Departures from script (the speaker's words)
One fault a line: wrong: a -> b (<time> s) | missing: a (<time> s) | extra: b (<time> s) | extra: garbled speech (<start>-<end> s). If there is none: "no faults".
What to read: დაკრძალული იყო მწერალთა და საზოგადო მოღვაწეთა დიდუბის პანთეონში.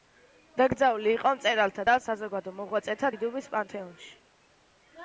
no faults